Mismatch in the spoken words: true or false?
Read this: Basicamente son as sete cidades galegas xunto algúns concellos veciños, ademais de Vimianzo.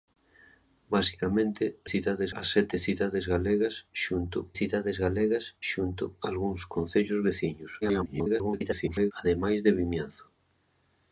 true